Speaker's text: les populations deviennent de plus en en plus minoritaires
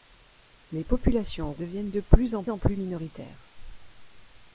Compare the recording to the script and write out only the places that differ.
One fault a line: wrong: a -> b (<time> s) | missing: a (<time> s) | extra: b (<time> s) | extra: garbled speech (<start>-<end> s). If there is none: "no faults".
no faults